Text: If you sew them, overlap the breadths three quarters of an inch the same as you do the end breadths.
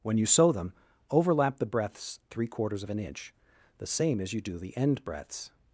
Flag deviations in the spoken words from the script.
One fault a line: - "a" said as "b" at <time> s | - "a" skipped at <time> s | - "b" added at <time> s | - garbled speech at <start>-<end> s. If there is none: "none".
- "If" said as "When" at 0.0 s